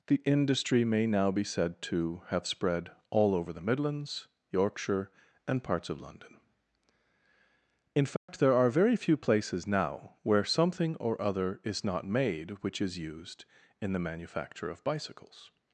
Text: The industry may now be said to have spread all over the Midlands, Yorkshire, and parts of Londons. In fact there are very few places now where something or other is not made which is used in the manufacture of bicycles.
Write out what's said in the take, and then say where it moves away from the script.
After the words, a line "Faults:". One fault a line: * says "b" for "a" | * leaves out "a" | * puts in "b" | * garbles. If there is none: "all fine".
The industry may now be said to have spread all over the Midlands, Yorkshire, and parts of London. In fact there are very few places now where something or other is not made which is used in the manufacture of bicycles.
Faults:
* says "London" for "Londons"